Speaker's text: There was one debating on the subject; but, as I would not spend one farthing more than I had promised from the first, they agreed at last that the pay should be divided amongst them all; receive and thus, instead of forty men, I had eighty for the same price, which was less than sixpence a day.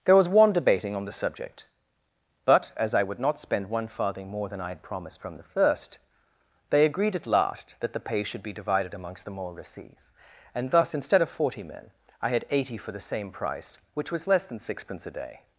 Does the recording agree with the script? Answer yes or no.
yes